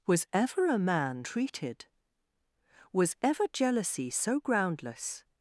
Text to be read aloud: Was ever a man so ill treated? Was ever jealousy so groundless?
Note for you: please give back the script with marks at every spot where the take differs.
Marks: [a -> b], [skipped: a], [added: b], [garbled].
Was ever a man [skipped: so ill] treated? Was ever jealousy so groundless?